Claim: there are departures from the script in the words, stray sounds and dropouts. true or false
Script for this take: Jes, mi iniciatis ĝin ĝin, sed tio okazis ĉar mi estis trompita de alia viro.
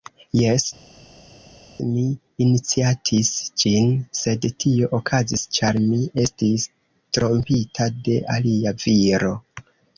true